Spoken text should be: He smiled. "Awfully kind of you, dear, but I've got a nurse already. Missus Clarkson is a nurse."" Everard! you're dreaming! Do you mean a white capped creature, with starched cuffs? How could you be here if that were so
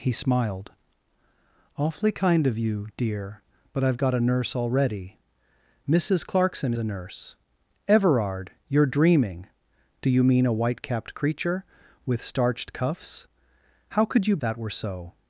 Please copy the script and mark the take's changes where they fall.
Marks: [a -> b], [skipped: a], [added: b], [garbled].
He smiled. "Awfully kind of you, dear, but I've got a nurse already. Missus Clarkson [skipped: is] a nurse."" Everard! you're dreaming! Do you mean a white capped creature, with starched cuffs? How could you [skipped: be here if] that were so